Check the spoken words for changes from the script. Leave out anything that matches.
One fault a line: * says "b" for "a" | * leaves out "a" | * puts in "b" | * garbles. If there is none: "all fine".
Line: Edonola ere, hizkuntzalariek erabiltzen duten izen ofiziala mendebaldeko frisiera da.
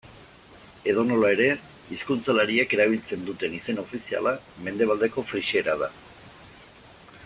all fine